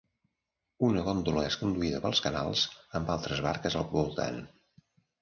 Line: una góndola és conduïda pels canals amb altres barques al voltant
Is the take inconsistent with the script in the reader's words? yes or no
no